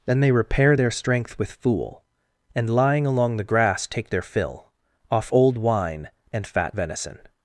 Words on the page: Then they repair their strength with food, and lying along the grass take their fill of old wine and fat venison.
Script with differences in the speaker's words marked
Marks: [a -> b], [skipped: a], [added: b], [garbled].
Then they repair their strength with [food, -> fool] and lying along the grass take their fill [of -> off] old wine and fat venison.